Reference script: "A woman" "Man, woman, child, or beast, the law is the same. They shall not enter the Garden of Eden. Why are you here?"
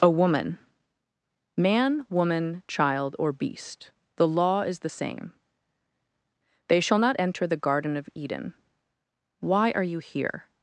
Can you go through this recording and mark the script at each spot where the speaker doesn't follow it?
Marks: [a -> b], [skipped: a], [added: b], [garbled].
"A woman" "Man, woman, child, or beast, the law is the same. They shall not enter the Garden of Eden. Why are you here?"